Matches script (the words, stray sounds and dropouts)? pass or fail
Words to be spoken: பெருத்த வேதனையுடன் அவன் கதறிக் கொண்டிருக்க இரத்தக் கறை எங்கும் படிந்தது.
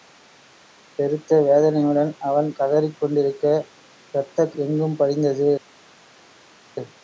fail